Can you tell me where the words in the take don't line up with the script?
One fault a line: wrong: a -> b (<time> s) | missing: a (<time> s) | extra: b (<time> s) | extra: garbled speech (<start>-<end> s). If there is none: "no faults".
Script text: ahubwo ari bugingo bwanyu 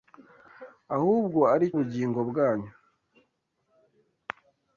no faults